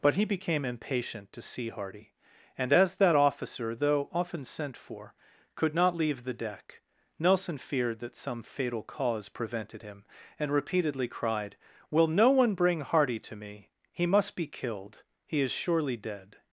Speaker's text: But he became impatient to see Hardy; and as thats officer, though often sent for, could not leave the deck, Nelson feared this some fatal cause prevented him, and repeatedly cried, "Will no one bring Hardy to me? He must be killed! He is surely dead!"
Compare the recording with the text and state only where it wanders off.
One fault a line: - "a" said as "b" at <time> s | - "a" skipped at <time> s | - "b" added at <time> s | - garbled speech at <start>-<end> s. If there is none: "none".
- "thats" said as "that" at 3.0 s
- "this" said as "that" at 8.0 s